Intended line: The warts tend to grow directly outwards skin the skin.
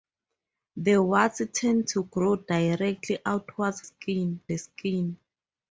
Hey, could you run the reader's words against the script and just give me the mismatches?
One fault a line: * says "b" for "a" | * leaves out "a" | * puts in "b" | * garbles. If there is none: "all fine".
all fine